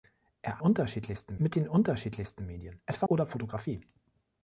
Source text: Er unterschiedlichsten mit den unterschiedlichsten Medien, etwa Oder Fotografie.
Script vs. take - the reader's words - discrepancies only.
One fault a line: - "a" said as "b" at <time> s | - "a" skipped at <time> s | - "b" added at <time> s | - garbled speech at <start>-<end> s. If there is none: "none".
none